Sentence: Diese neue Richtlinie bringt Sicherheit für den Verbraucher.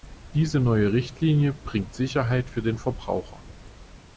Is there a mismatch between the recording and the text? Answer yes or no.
no